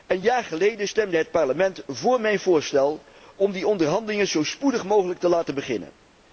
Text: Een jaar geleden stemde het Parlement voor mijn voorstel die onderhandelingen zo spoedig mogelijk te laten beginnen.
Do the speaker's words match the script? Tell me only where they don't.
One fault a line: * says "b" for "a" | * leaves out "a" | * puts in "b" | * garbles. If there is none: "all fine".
* puts in "om"